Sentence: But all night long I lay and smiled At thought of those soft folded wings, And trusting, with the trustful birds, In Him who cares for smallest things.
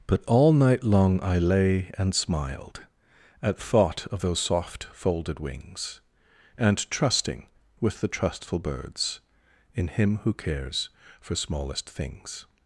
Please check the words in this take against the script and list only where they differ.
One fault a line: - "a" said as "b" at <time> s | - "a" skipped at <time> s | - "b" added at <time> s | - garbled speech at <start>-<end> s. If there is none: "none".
none